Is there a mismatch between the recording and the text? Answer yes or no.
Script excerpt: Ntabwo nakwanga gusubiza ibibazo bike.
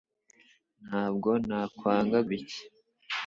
yes